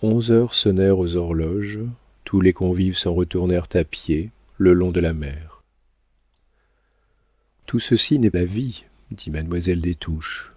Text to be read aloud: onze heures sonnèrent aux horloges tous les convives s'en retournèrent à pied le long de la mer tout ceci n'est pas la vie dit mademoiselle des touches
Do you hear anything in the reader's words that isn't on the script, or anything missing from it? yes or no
yes